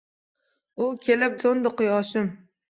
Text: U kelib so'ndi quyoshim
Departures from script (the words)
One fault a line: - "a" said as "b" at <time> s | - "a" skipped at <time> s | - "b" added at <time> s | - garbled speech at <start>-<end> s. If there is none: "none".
none